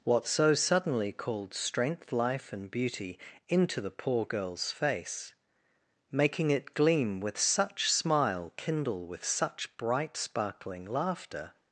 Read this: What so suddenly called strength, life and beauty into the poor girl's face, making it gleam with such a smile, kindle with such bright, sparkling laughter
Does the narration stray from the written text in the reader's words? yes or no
yes